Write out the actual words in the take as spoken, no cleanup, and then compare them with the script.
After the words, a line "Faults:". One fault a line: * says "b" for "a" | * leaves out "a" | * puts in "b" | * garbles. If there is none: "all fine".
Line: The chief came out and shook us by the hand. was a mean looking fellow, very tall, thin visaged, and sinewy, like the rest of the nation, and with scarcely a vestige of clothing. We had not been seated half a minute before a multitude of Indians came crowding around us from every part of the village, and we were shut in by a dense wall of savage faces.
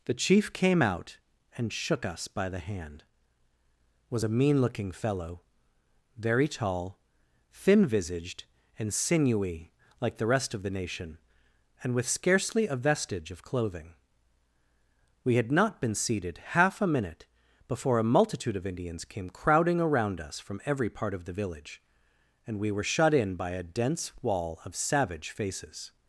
The chief came out and shook us by the hand. was a mean looking fellow, very tall, thin visaged, and sinewy, like the rest of the nation, and with scarcely a vestige of clothing. We had not been seated half a minute before a multitude of Indians came crowding around us from every part of the village, and we were shut in by a dense wall of savage faces.
Faults:
all fine